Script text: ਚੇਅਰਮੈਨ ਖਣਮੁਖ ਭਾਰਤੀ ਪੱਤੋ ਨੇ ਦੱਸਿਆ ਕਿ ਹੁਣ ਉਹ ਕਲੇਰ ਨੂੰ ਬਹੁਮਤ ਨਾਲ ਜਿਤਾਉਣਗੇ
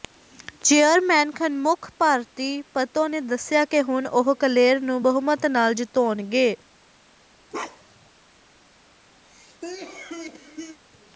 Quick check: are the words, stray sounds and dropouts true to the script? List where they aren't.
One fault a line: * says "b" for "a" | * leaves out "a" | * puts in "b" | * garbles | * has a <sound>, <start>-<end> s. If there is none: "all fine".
* has a bark, 7.5-8.1 s
* has a cough, 9.2-10.8 s